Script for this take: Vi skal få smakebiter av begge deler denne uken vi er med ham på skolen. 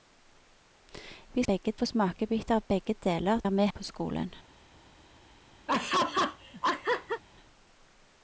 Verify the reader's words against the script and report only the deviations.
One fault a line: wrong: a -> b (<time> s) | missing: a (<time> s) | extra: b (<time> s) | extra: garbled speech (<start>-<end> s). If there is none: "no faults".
wrong: skal -> begge (1.5 s)
missing: denne uken vi (3.4 s)
missing: ham (3.7 s)